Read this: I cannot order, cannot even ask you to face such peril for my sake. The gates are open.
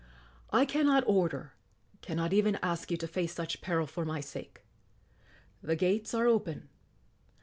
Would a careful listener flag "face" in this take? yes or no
no